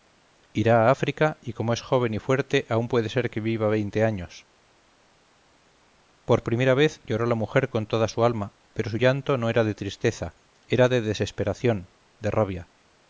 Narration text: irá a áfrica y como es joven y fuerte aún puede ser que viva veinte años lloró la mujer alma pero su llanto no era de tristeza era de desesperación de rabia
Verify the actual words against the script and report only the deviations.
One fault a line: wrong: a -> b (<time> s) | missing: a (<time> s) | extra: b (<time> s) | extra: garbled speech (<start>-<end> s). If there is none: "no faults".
extra: por primera vez (6.2 s)
extra: con toda su (7.7 s)